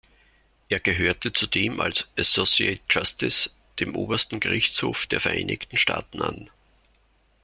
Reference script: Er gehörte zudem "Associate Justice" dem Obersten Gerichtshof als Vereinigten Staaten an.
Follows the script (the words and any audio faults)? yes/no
no